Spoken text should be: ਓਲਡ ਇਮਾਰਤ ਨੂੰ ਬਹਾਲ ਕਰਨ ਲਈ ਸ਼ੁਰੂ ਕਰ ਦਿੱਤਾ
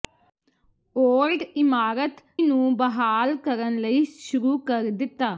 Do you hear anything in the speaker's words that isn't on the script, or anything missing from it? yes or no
no